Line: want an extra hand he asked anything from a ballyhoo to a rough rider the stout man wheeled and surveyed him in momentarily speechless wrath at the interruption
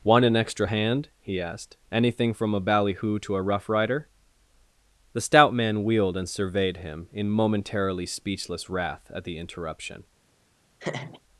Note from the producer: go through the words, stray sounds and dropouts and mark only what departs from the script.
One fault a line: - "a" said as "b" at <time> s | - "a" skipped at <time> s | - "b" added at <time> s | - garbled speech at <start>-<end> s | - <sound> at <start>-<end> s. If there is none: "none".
- laugh at 10.8-11.2 s